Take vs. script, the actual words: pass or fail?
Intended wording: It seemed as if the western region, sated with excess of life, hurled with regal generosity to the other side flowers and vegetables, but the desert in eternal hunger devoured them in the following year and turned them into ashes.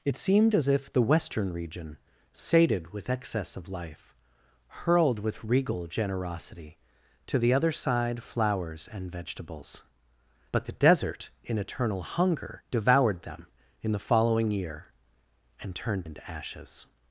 fail